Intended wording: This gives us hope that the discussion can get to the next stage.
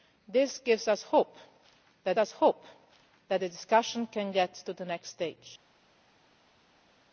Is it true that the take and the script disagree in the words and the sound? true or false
true